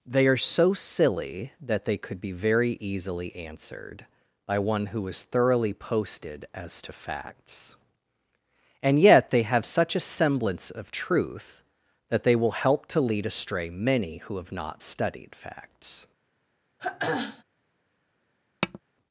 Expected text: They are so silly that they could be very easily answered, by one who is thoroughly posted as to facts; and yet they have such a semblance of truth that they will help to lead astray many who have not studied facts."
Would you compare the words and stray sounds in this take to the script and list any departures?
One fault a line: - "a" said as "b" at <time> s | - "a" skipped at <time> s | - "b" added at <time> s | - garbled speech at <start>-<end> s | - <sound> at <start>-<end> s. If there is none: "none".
- throat clearing at 16.8-17.4 s
- tap at 18.6-18.8 s